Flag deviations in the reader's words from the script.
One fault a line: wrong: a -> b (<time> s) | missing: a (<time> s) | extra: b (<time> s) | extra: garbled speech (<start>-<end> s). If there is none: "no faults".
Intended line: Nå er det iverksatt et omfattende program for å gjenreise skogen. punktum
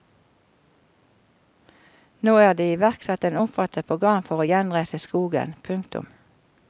no faults